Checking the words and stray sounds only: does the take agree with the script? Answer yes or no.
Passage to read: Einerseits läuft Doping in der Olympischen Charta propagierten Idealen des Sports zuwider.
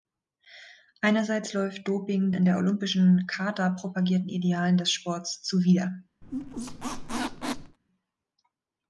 no